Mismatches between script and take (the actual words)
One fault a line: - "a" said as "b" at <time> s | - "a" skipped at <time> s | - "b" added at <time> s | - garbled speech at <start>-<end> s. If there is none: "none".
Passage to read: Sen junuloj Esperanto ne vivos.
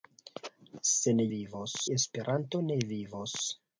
- "junuloj" said as "vivos" at 1.3 s